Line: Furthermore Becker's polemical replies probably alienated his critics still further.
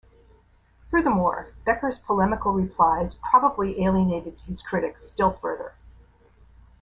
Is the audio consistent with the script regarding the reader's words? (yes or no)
yes